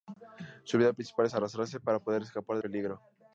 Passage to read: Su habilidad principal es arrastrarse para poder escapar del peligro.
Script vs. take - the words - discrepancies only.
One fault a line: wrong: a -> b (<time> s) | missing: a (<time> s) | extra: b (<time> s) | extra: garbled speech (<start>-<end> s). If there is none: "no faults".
missing: del (2.6 s)